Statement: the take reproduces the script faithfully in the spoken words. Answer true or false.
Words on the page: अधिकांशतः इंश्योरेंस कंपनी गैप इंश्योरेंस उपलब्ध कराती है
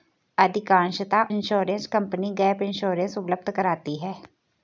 true